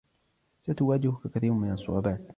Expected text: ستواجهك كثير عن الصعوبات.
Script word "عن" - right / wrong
wrong